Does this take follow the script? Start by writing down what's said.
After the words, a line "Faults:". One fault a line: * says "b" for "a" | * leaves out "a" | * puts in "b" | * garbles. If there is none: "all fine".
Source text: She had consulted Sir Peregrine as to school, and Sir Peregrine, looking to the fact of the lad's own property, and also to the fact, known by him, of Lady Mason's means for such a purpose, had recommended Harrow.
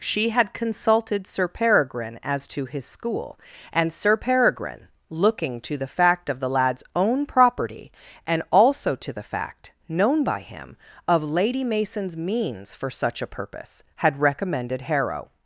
She had consulted Sir Peregrine as to his school, and Sir Peregrine, looking to the fact of the lad's own property, and also to the fact, known by him, of Lady Mason's means for such a purpose, had recommended Harrow.
Faults:
* puts in "his"